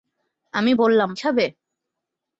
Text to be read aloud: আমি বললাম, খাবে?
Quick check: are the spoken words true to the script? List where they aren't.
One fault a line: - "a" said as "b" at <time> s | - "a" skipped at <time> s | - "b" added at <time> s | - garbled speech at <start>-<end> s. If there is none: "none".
none